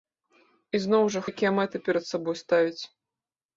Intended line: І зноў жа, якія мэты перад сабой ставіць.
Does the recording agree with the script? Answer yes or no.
yes